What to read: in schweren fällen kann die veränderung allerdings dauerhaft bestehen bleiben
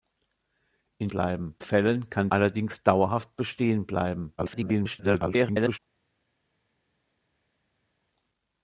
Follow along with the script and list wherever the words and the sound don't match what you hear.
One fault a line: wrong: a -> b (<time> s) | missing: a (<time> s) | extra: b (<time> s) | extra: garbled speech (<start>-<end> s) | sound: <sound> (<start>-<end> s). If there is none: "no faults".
wrong: schweren -> bleiben (1.1 s)
missing: die veränderung (2.3 s)
extra: garbled speech (4.4-5.8 s)